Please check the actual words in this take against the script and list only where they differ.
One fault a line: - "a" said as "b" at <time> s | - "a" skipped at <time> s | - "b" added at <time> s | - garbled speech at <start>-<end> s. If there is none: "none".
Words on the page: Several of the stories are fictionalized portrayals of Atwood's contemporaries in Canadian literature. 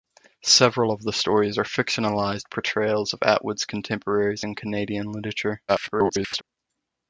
- garbled speech at 5.7-6.4 s